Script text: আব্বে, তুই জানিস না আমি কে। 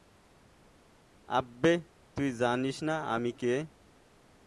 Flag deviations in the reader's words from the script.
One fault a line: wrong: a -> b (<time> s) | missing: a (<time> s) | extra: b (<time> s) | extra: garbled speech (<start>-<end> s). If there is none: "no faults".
no faults